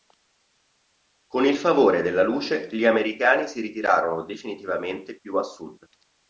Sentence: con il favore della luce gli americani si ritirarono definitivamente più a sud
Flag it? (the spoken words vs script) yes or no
no